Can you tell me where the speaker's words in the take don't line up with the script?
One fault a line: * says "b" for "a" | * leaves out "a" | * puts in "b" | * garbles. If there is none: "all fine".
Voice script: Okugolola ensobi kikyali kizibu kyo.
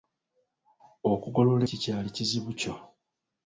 * leaves out "ensobi"